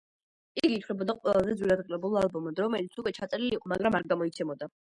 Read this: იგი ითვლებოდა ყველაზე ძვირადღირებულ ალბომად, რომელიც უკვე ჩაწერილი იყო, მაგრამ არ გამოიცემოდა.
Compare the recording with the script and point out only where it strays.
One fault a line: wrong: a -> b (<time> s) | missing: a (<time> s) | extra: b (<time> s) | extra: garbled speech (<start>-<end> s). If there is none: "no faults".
no faults